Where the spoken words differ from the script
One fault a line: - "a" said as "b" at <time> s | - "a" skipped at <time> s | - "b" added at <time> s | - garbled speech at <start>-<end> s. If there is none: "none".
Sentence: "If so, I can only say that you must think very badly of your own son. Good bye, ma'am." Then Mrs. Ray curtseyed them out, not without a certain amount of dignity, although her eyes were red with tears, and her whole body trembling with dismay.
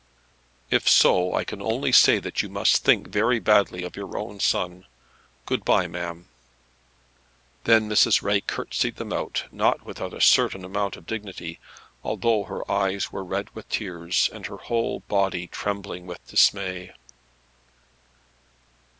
none